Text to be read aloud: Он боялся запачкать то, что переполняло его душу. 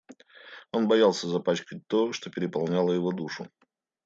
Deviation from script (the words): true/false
false